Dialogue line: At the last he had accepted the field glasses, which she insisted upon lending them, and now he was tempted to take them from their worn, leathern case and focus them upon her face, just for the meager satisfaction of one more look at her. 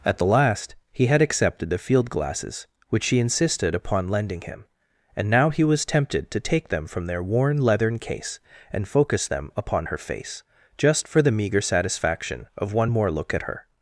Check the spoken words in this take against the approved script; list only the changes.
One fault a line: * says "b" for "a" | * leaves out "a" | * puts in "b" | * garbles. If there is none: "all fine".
* says "him" for "them"